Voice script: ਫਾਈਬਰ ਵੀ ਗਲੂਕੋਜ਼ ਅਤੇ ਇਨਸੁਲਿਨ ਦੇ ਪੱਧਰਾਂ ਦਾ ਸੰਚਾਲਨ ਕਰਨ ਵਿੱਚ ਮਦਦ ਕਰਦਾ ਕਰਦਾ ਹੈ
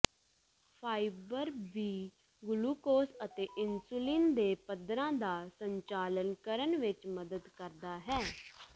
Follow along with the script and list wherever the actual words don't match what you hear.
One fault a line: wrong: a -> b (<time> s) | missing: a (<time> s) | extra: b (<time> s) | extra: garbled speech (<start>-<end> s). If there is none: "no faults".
missing: ਕਰਦਾ (8.0 s)